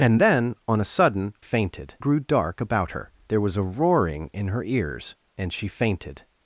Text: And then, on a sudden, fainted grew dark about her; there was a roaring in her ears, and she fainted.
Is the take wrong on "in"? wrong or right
right